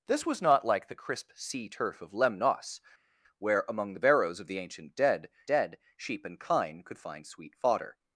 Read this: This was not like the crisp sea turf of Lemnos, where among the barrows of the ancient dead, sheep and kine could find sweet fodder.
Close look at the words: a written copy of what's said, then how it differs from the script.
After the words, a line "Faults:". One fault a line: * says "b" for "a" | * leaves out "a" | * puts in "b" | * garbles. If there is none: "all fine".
This was not like the crisp sea turf of Lemnos, where among the barrows of the ancient dead dead, sheep and kine could find sweet fodder.
Faults:
* puts in "dead"